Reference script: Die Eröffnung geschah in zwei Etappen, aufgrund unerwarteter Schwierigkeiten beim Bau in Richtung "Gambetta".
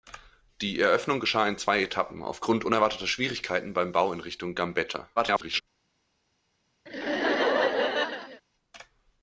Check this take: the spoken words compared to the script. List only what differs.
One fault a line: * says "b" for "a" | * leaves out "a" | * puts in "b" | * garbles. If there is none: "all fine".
* garbles